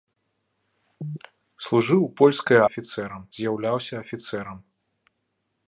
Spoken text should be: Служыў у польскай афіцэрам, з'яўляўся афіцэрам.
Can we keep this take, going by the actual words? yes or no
yes